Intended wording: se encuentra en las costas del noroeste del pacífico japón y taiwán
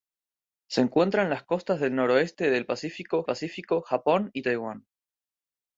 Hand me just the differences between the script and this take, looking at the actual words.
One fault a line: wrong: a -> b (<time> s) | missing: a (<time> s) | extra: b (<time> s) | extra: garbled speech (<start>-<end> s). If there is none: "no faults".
extra: pacífico (3.2 s)